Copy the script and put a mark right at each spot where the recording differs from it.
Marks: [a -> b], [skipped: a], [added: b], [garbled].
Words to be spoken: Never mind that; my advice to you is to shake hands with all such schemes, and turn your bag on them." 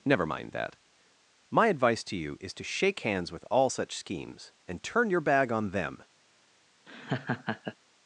Never mind that; my advice to you is to shake hands with all such schemes, and turn your bag on them."